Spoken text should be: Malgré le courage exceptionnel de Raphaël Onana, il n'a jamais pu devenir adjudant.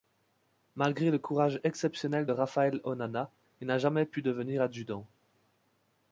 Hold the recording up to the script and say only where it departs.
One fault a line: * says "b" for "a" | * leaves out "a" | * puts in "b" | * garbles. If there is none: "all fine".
all fine